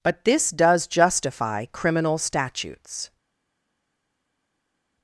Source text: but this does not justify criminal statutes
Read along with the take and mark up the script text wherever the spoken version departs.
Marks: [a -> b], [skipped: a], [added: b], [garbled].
but this does [skipped: not] justify criminal statutes